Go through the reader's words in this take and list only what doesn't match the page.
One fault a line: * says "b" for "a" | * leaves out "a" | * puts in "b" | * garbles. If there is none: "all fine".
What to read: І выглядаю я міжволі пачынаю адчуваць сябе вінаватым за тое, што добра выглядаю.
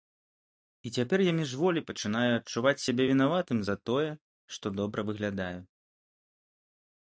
* says "цяпер" for "выглядаю"